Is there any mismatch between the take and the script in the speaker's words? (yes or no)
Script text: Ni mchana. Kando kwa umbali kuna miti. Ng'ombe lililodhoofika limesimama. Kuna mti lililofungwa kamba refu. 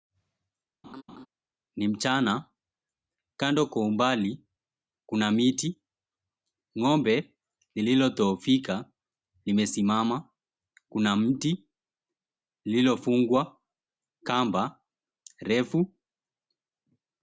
no